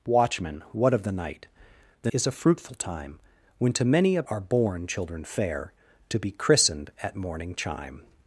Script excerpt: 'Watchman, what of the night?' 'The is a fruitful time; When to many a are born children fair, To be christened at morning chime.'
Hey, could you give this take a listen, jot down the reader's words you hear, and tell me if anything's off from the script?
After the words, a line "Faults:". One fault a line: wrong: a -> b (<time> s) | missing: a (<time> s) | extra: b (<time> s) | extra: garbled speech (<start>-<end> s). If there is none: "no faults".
'Watchman, what of the night?' 'The is a fruitful time; When to many a are born children fair, To be christened at morning chime.'
Faults:
no faults